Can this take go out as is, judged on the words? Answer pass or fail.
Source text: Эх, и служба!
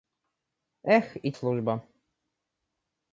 pass